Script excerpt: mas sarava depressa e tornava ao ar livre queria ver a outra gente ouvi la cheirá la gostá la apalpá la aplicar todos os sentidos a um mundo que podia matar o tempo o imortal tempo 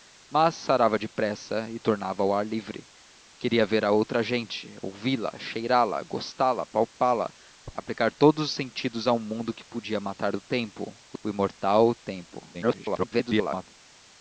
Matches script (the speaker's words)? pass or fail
fail